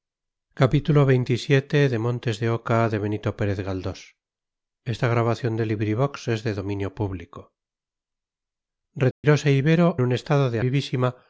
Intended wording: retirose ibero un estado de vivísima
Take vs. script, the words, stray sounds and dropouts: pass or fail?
fail